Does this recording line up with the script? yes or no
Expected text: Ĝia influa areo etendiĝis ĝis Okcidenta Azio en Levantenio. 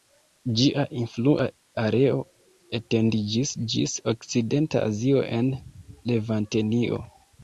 yes